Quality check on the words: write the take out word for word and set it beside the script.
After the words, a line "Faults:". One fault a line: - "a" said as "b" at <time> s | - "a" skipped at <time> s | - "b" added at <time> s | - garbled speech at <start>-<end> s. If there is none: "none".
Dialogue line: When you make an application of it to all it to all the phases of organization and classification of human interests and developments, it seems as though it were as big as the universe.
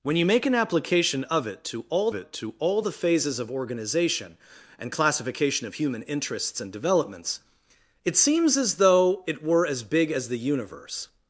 When you make an application of it to all it to all the phases of organization and classification of human interests and developments, it seems as though it were as big as the universe.
Faults:
none